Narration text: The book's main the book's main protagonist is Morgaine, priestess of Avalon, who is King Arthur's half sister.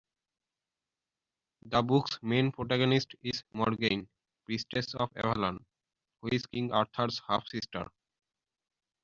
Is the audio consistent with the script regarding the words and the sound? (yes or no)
no